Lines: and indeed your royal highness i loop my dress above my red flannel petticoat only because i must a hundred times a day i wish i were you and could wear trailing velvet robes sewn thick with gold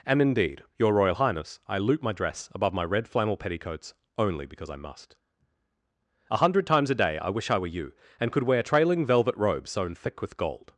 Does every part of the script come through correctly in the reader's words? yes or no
no